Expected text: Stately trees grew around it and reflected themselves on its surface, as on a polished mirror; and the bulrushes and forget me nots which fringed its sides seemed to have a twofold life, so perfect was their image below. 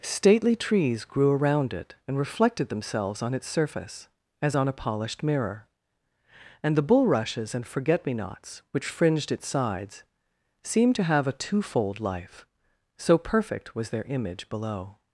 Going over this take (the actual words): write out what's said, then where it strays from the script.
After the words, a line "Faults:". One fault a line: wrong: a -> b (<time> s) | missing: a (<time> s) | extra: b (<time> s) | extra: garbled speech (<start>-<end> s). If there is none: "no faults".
Stately trees grew around it and reflected themselves on its surface, as on a polished mirror; and the bulrushes and forget me nots which fringed its sides seemed to have a twofold life, so perfect was their image below.
Faults:
no faults